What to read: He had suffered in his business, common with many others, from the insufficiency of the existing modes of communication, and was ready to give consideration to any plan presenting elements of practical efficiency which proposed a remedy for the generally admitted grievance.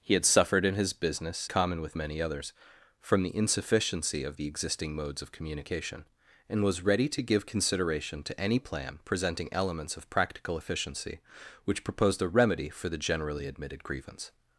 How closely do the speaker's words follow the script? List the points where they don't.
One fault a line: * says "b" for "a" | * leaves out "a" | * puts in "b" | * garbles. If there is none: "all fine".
all fine